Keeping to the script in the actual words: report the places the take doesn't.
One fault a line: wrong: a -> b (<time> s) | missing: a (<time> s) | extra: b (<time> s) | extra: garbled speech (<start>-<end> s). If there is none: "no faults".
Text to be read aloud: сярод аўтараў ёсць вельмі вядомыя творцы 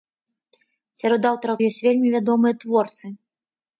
no faults